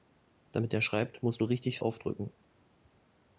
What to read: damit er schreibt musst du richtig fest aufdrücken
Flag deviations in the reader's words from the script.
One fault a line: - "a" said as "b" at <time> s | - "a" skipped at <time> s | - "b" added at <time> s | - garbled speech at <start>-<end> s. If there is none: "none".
- "fest" skipped at 1.8 s